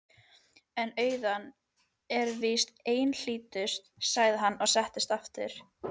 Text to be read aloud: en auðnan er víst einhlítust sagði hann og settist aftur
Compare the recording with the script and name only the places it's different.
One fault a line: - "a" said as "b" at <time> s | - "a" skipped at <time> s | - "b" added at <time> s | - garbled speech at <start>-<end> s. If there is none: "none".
none